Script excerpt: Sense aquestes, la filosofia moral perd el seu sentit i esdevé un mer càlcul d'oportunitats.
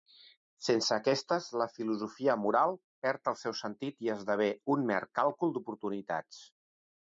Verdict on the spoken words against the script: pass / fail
pass